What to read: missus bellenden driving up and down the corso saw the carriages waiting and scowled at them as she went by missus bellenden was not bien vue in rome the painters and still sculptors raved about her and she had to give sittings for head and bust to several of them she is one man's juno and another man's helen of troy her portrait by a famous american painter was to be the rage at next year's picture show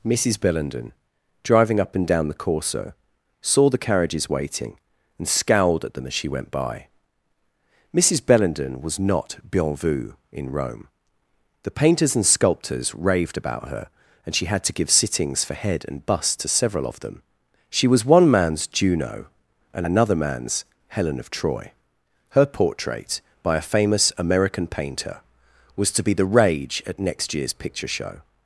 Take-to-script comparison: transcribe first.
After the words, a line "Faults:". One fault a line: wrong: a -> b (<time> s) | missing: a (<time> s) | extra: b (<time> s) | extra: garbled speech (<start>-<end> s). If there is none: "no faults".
missus bellenden driving up and down the corso saw the carriages waiting and scowled at them as she went by missus bellenden was not bien vue in rome the painters and sculptors raved about her and she had to give sittings for head and bust to several of them she was one man's juno and another man's helen of troy her portrait by a famous american painter was to be the rage at next year's picture show
Faults:
missing: still (12.2 s)
wrong: is -> was (17.9 s)